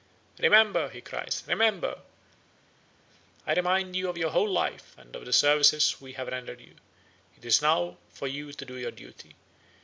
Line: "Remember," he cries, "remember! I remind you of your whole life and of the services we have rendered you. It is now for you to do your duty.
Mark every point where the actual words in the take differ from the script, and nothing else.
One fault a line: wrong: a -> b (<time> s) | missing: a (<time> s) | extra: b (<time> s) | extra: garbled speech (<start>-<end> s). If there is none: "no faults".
no faults